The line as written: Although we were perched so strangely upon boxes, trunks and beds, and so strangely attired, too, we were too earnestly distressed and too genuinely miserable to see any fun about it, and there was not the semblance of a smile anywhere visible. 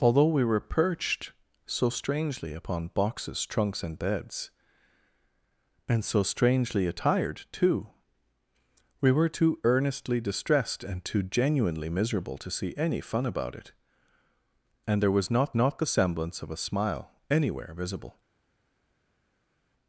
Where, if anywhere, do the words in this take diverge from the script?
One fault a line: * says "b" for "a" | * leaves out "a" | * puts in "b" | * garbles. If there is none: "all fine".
* puts in "not"